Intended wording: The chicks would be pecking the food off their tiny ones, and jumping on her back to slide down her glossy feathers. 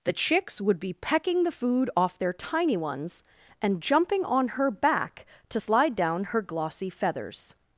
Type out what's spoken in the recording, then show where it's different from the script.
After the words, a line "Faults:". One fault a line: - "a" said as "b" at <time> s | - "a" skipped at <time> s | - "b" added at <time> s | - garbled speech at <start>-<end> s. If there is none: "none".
The chicks would be pecking the food off their tiny ones, and jumping on her back to slide down her glossy feathers.
Faults:
none